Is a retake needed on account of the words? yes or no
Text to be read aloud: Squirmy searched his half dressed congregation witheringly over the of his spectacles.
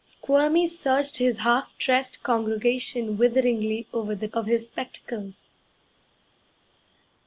no